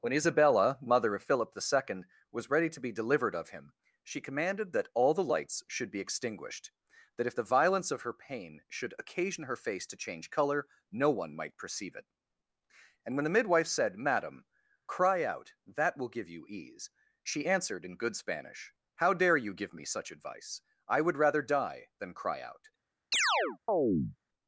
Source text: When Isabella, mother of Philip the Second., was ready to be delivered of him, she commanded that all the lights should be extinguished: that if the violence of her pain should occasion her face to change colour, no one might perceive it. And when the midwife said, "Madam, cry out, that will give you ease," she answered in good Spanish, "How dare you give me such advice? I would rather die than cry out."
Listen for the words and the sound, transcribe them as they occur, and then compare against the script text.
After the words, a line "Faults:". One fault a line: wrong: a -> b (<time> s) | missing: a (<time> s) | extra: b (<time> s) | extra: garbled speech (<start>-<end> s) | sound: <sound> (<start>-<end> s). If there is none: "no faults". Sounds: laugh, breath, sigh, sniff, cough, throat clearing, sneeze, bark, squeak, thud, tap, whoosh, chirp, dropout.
When Isabella, mother of Philip the Second., was ready to be delivered of him, she commanded that all the lights should be extinguished: that if the violence of her pain should occasion her face to change colour, no one might perceive it. And when the midwife said, "Madam, cry out, that will give you ease," she answered in good Spanish, "How dare you give me such advice? I would rather die than cry out."
Faults:
sound: chirp (23.1-24.2 s)